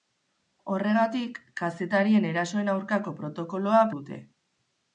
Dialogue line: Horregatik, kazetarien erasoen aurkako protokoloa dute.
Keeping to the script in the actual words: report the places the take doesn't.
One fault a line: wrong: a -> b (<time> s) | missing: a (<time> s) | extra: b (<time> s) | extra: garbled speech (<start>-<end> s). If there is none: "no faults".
no faults